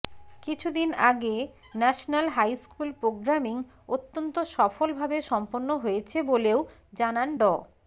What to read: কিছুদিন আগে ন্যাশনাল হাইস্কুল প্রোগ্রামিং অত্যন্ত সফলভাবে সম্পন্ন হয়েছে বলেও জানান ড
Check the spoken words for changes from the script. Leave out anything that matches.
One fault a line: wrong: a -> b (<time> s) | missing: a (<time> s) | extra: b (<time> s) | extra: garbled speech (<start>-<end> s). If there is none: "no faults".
no faults